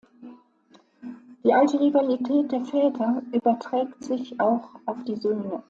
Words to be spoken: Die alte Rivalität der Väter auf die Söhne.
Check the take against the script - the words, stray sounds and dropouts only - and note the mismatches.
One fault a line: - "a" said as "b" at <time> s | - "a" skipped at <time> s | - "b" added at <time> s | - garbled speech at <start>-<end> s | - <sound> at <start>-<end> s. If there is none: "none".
- "überträgt sich auch" added at 3.3 s